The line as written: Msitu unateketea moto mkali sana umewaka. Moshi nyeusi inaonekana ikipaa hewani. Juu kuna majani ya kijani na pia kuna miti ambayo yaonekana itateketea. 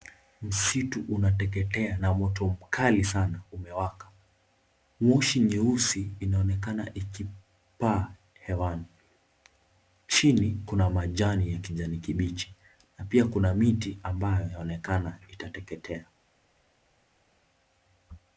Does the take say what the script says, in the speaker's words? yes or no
no